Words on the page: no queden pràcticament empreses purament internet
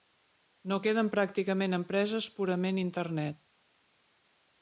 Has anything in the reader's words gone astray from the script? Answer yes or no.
no